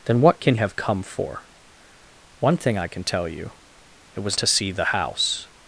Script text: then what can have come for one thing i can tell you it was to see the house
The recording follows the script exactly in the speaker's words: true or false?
true